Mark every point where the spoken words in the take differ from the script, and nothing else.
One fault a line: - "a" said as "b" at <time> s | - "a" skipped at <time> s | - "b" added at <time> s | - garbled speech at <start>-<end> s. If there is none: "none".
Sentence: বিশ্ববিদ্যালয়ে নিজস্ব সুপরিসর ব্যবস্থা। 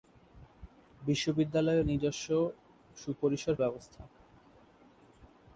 none